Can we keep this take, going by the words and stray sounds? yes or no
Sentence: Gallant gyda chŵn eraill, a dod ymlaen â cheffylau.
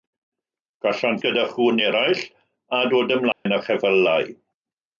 no